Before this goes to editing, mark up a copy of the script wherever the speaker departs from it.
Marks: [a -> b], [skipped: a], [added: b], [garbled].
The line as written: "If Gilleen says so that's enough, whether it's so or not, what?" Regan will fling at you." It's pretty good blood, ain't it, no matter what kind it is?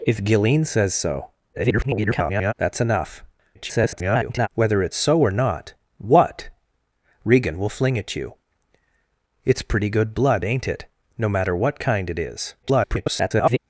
"If Gilleen says so [garbled] that's enough, [garbled] whether it's so or not, what?" Regan will fling at you." It's pretty good blood, ain't it, no matter what kind it is? [garbled]